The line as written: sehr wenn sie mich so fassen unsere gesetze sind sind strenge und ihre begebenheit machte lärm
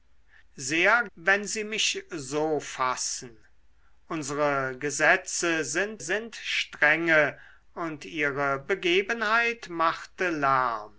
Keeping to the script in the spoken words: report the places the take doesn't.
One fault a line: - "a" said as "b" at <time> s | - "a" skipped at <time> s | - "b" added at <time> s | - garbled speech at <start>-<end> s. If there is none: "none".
none